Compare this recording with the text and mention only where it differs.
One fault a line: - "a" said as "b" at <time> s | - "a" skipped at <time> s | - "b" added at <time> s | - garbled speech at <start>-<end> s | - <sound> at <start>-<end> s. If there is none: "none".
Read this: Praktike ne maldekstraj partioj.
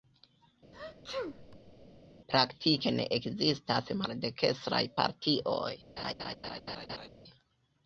- sneeze at 0.7-2.0 s
- "ekzistas" added at 3.2 s
- laugh at 6.0-7.1 s